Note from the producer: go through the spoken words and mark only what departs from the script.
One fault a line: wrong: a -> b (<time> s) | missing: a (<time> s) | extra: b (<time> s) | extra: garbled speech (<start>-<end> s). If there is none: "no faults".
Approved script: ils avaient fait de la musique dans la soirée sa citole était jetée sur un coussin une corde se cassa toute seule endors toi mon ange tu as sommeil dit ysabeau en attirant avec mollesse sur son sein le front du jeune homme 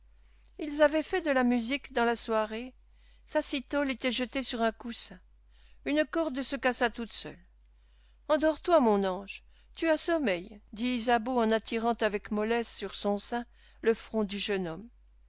no faults